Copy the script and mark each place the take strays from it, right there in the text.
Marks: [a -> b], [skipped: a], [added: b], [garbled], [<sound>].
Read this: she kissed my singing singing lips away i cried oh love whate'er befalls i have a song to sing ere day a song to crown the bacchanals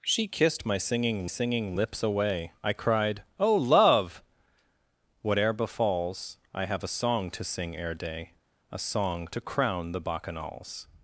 she kissed my singing singing lips away i cried oh love whate'er befalls i have a song to sing ere day a song to crown the bacchanals